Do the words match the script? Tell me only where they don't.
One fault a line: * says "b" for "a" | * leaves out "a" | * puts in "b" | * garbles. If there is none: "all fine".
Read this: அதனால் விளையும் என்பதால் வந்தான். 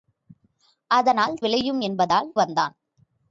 all fine